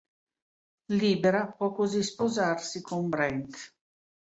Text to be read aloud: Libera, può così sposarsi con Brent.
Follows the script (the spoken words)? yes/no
yes